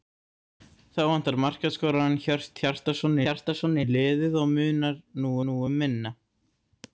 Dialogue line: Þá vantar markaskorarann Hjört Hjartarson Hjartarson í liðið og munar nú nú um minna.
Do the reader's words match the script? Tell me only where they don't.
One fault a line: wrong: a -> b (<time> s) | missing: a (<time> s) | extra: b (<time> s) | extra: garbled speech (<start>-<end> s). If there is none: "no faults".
no faults